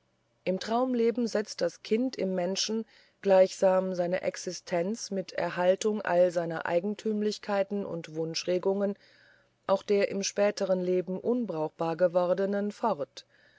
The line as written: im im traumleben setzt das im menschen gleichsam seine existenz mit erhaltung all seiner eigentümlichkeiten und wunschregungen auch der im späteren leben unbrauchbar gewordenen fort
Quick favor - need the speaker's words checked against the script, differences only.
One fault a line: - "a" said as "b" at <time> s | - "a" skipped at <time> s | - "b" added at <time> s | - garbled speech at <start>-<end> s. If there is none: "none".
- "im" skipped at 0.6 s
- "kind" added at 1.8 s